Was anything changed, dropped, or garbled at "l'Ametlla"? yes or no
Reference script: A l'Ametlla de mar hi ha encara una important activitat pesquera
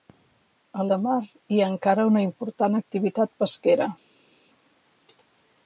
yes